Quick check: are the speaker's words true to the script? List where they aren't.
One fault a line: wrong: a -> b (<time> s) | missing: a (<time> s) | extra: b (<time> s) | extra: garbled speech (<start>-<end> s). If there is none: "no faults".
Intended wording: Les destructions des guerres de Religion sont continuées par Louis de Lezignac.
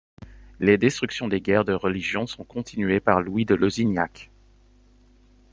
no faults